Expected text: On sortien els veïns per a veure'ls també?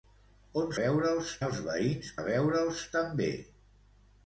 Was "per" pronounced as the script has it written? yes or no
no